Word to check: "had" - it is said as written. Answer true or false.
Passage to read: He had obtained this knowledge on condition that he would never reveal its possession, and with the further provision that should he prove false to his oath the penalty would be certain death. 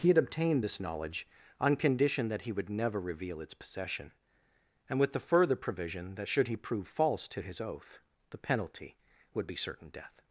true